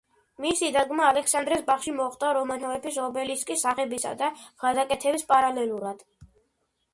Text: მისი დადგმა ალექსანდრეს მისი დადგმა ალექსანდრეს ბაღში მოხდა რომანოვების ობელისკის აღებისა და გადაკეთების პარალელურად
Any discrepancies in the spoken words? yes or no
yes